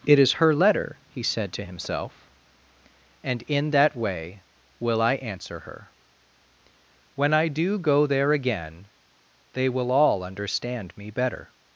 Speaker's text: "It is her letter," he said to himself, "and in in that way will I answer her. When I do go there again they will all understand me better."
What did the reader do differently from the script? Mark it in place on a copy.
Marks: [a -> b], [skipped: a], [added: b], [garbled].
"It is her letter," he said to himself, "and in [skipped: in] that way will I answer her. When I do go there again they will all understand me better."